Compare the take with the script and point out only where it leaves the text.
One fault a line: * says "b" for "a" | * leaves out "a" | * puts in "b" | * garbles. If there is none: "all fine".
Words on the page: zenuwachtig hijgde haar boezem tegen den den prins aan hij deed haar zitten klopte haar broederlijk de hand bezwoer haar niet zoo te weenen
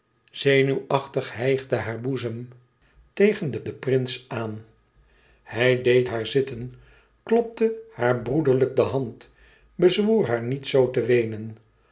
all fine